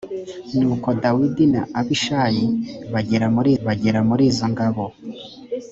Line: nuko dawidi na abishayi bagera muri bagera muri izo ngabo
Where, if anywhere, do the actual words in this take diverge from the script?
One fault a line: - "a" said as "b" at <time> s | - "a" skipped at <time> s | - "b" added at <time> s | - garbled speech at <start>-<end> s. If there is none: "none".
none